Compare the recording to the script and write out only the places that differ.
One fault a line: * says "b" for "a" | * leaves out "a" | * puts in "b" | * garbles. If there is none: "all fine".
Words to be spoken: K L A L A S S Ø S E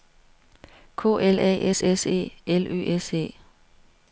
* says "S S E L" for "L A S S"